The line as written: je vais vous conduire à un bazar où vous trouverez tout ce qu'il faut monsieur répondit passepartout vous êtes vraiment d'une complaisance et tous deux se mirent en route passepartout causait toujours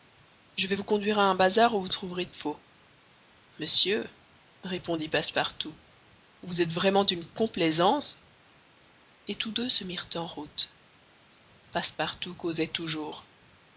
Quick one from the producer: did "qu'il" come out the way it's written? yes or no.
no